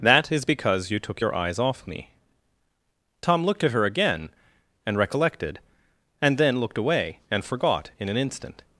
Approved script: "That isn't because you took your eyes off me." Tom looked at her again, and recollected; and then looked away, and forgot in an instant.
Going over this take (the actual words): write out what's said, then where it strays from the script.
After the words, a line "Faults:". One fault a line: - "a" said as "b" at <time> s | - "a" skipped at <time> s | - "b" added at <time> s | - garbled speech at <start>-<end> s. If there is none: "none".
"That is because you took your eyes off me." Tom looked at her again, and recollected; and then looked away, and forgot in an instant.
Faults:
- "isn't" said as "is" at 0.3 s